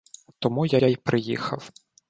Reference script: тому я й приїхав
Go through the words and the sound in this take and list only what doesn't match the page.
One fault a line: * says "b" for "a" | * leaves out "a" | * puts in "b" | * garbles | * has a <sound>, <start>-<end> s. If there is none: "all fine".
* puts in "я"